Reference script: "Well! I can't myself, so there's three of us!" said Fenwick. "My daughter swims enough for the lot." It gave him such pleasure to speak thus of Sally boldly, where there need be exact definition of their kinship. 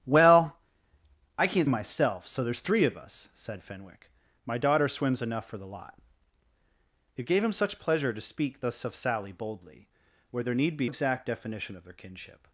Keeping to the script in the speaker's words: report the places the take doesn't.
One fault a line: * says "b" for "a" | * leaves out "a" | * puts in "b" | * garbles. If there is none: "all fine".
all fine